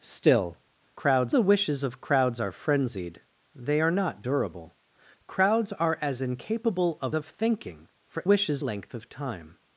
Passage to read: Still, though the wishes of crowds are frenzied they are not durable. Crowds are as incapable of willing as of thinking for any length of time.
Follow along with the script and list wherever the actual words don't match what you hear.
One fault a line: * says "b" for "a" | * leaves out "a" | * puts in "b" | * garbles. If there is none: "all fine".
* says "crowds" for "though"
* leaves out "willing as"
* says "wishes" for "any"